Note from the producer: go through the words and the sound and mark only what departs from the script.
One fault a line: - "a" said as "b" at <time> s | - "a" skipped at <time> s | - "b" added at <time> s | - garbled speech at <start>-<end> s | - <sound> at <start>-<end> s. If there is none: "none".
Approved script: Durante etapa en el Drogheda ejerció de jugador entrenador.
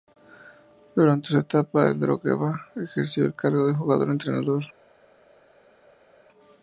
- "su" added at 1.3 s
- "el cargo" added at 3.2 s